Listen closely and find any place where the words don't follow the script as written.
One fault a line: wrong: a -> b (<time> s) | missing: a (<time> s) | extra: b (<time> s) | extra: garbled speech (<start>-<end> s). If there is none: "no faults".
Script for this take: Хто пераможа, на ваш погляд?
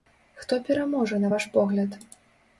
no faults